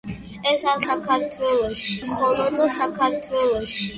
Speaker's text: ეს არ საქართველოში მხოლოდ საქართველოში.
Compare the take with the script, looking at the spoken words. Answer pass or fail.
pass